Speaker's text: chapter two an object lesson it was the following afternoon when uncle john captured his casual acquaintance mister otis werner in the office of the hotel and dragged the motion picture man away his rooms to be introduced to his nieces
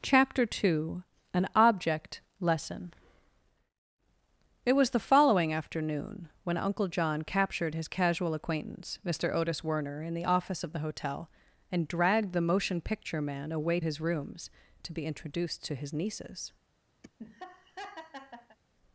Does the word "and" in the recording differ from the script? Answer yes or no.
no